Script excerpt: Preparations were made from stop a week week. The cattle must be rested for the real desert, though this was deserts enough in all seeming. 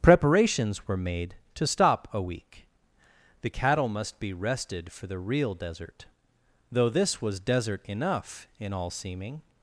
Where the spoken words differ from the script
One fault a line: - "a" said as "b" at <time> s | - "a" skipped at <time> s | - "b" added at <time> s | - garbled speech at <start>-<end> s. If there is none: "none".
- "from" said as "to" at 1.5 s
- "week" skipped at 2.7 s
- "deserts" said as "desert" at 7.4 s